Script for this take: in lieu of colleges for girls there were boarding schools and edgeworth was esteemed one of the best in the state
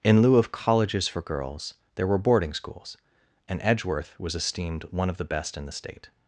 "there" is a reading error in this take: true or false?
false